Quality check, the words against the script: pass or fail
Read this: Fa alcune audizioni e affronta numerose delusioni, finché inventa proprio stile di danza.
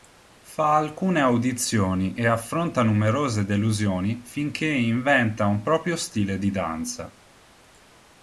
fail